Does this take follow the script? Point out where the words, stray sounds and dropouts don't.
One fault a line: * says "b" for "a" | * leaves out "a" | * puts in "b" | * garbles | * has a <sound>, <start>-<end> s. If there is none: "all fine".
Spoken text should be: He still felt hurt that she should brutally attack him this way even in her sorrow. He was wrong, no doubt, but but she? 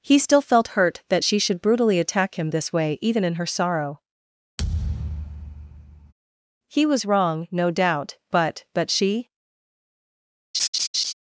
* has a thud, 4.6-6.1 s
* has a laugh, 10.5-11.1 s